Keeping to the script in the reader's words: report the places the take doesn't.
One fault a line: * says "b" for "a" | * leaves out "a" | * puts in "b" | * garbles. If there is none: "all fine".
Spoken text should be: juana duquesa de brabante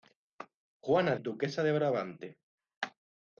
all fine